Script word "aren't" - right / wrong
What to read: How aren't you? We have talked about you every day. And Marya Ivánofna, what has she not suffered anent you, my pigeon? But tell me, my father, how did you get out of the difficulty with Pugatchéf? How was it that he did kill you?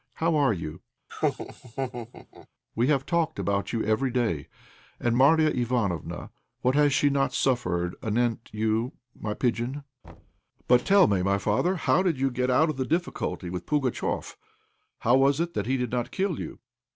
wrong